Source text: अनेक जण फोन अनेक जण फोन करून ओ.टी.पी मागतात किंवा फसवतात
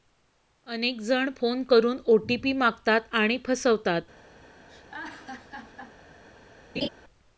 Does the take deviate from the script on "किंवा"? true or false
true